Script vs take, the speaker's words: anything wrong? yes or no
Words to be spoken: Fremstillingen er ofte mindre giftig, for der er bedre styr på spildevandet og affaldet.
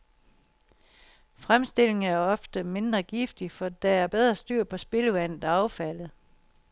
no